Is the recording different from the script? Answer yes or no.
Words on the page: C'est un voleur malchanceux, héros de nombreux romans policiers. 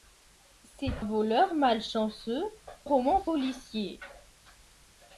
yes